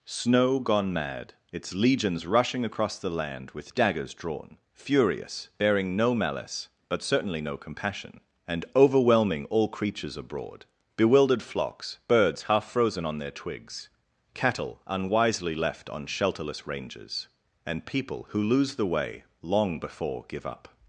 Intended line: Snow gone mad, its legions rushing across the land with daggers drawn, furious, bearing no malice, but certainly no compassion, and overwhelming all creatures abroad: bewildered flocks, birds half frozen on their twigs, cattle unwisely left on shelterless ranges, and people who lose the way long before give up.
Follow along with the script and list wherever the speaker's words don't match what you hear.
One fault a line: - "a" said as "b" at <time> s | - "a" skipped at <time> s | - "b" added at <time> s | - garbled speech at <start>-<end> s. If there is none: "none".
none